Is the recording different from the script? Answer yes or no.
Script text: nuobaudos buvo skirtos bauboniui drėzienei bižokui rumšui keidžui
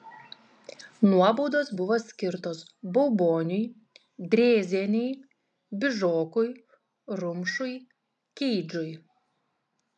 no